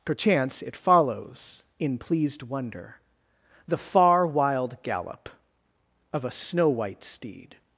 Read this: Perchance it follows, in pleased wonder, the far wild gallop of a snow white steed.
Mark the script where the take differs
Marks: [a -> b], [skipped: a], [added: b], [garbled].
Perchance it follows, in pleased wonder, the far wild gallop of a snow white steed.